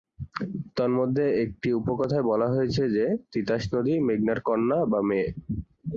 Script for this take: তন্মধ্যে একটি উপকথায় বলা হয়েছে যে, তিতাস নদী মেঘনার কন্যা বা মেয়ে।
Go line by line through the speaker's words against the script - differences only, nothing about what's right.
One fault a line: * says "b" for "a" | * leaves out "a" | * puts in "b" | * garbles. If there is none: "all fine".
all fine